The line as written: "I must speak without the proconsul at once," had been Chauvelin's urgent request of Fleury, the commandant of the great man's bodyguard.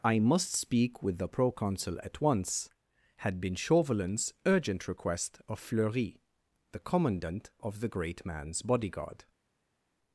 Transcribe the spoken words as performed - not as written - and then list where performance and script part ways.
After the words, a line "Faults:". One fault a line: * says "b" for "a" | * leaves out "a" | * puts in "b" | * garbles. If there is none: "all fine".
"I must speak with the proconsul at once," had been Chauvelin's urgent request of Fleury, the commandant of the great man's bodyguard.
Faults:
* says "with" for "without"